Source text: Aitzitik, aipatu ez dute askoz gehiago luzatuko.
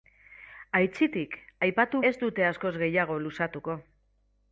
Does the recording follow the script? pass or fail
pass